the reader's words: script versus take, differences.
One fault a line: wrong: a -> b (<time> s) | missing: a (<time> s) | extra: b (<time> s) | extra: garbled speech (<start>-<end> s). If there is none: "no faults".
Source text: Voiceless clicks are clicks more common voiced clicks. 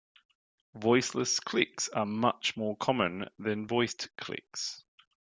wrong: clicks -> much (2.0 s)
extra: than (3.4 s)